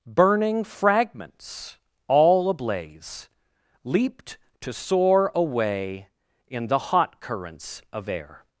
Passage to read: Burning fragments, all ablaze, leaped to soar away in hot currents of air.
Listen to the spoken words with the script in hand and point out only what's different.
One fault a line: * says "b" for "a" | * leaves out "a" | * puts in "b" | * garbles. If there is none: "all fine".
* puts in "the"